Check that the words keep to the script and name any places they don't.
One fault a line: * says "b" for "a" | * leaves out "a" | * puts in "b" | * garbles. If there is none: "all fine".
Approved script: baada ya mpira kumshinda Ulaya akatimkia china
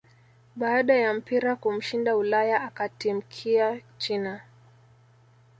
all fine